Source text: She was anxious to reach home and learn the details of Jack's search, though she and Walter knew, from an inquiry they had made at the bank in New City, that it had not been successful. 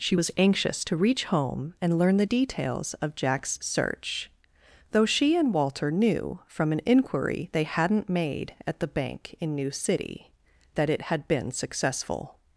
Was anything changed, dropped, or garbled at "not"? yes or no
yes